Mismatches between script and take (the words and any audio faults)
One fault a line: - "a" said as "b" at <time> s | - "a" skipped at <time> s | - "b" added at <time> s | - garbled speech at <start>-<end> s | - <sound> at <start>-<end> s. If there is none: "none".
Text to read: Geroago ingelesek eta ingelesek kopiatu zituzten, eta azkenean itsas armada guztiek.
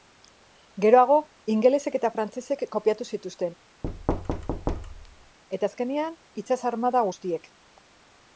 - "ingelesek" said as "frantsesek" at 2.2 s
- thud at 3.8-5.4 s